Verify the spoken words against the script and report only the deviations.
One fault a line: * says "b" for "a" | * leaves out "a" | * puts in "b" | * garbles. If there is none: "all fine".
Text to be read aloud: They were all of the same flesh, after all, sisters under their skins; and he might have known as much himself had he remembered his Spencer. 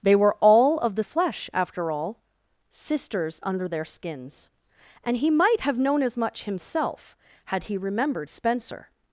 * leaves out "same"
* leaves out "his"